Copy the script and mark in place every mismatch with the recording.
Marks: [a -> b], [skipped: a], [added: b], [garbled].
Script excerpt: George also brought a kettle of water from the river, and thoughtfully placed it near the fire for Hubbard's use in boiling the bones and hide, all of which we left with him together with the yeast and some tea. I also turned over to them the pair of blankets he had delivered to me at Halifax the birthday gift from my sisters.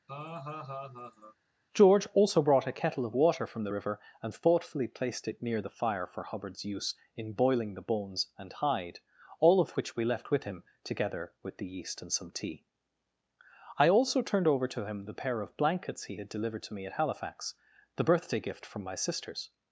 George also brought a kettle of water from the river, and thoughtfully placed it near the fire for Hubbard's use in boiling the bones and hide, all of which we left with him together with the yeast and some tea. I also turned over to [them -> him] the pair of blankets he had delivered to me at Halifax the birthday gift from my sisters.